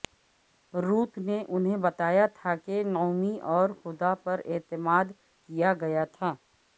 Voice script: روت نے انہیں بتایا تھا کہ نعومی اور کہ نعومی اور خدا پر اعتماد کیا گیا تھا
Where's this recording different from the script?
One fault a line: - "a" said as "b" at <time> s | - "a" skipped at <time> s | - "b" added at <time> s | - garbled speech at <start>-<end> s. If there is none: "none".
- "کہ نعومی اور" skipped at 3.7 s